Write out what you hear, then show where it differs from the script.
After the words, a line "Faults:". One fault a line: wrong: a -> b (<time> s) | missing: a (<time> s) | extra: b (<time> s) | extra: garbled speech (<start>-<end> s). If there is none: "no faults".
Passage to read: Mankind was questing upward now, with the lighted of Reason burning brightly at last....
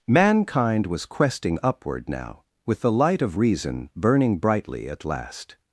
Mankind was questing upward now, with the light of Reason burning brightly at last....
Faults:
wrong: lighted -> light (2.9 s)